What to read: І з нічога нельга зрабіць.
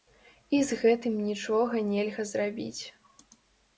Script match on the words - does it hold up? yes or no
no